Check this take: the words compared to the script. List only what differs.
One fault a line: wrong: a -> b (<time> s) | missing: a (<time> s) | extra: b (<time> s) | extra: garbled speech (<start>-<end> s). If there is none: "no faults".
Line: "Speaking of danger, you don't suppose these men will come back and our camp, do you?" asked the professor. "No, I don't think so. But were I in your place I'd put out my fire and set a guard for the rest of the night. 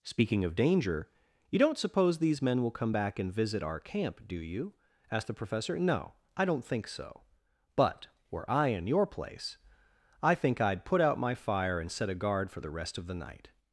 extra: visit (3.3 s)
extra: I think (10.2 s)